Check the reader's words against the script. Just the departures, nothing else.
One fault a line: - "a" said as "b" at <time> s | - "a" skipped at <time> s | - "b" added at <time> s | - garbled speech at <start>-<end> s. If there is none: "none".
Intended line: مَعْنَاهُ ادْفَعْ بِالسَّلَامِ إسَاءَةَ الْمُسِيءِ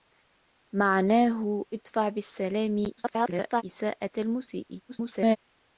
- garbled speech at 3.0-3.6 s
- garbled speech at 4.9-5.4 s